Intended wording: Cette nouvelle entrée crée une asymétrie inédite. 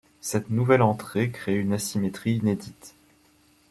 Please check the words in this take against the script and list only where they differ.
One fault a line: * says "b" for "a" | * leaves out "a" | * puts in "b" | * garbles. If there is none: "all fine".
all fine